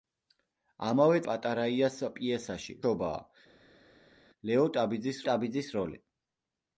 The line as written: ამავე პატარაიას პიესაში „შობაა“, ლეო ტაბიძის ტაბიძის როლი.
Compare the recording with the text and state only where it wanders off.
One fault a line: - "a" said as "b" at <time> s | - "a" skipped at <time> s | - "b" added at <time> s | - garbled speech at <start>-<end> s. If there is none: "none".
none